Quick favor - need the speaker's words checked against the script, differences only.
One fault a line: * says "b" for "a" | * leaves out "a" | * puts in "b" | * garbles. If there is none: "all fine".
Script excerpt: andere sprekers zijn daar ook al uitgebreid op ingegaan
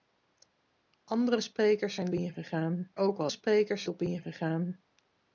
* says "ingegaan" for "daar"
* says "sprekers" for "uitgebreid"